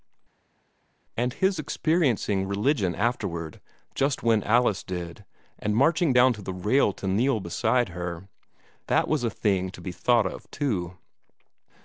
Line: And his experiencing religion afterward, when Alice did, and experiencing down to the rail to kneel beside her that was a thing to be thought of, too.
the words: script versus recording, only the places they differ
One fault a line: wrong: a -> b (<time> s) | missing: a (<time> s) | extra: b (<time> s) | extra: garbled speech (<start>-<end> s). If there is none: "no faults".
extra: just (3.9 s)
wrong: experiencing -> marching (5.7 s)